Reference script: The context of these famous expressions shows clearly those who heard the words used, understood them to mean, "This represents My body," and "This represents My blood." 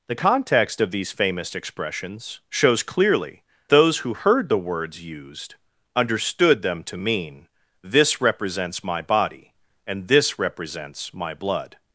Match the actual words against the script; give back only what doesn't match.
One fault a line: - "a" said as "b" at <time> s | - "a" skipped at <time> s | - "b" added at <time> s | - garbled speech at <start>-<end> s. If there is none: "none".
none